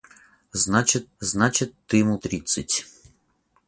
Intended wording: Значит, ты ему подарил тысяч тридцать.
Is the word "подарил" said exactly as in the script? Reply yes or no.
no